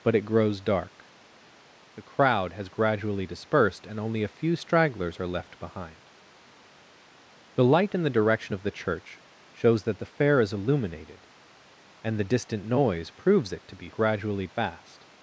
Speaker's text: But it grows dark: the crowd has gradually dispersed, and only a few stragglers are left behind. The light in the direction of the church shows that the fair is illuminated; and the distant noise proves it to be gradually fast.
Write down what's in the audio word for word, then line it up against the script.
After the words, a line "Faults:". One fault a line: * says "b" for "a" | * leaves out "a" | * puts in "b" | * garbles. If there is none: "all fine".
But it grows dark: the crowd has gradually dispersed, and only a few stragglers are left behind. The light in the direction of the church shows that the fair is illuminated; and the distant noise proves it to be gradually fast.
Faults:
all fine